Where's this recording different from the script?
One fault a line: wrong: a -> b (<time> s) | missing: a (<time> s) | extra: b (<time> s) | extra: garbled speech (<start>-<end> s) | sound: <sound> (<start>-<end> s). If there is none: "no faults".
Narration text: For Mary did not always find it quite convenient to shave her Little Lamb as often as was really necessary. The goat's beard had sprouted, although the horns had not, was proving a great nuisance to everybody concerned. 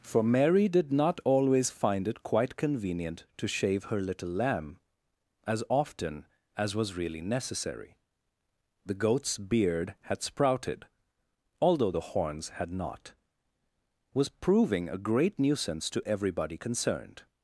no faults